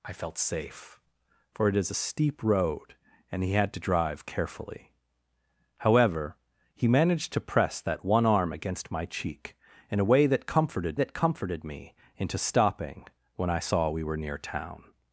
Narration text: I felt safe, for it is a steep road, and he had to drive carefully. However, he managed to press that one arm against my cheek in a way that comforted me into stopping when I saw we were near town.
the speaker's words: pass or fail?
fail